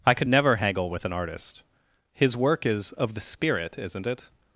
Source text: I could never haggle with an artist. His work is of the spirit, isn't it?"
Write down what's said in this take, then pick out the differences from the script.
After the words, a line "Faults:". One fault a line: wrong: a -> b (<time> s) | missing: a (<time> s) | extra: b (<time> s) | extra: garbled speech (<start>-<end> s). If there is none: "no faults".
I could never haggle with an artist. His work is of the spirit, isn't it?"
Faults:
no faults